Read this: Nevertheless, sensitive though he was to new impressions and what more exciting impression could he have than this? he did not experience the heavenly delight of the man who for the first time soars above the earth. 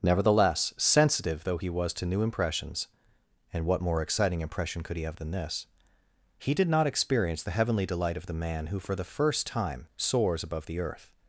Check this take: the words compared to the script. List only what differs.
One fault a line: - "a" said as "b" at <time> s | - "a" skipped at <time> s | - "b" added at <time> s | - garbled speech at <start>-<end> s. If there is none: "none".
none